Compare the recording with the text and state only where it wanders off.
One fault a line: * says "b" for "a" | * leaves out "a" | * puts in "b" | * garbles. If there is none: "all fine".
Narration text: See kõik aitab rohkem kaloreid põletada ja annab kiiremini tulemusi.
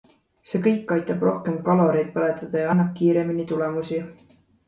all fine